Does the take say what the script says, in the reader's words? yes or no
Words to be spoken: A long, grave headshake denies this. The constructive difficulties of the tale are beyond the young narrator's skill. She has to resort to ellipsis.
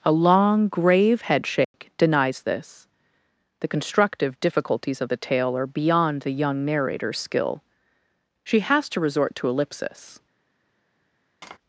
yes